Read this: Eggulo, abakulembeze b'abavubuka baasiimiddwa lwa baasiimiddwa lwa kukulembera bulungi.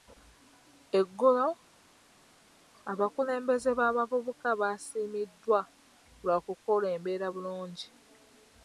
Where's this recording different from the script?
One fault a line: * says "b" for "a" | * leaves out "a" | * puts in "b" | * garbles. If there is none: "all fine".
* leaves out "baasiimiddwa lwa"